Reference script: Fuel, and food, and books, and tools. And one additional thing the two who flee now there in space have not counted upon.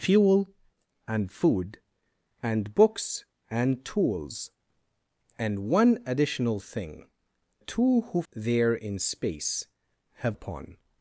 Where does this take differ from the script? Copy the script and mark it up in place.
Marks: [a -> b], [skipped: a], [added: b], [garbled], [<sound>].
Fuel, and food, and books, and tools. And one additional thing [skipped: the] two who [skipped: flee now] there in space have [skipped: not counted] upon.